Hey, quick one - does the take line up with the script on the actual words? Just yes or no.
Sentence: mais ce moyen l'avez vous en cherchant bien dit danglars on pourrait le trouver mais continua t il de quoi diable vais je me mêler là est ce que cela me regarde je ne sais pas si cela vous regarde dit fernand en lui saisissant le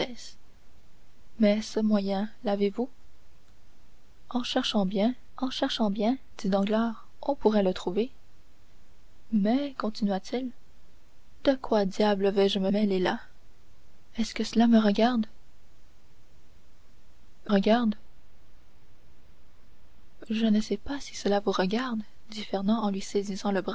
no